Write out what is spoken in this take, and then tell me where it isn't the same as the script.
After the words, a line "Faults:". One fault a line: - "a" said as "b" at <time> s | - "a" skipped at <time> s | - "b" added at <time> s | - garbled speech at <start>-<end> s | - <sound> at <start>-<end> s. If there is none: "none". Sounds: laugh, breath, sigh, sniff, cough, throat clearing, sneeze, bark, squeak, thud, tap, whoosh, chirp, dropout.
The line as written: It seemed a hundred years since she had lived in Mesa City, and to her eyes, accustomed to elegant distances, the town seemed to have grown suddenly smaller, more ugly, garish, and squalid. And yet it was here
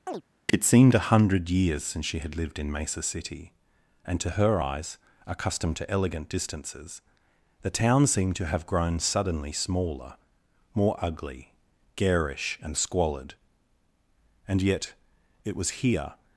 It seemed a hundred years since she had lived in Mesa City, and to her eyes, accustomed to elegant distances, the town seemed to have grown suddenly smaller, more ugly, garish, and squalid. And yet it was here
Faults:
- chirp at 0.1-0.2 s